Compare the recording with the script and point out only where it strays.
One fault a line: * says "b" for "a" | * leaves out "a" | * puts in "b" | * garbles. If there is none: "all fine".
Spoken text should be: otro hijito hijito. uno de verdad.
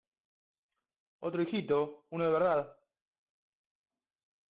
* leaves out "hijito"